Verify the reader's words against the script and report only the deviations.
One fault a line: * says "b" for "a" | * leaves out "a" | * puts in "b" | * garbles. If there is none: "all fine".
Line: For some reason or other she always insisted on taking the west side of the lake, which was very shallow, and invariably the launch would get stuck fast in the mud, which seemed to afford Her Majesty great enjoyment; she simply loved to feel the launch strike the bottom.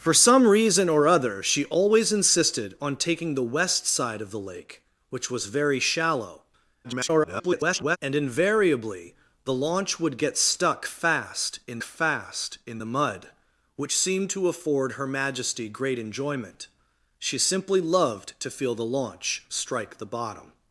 * garbles
* puts in "fast in"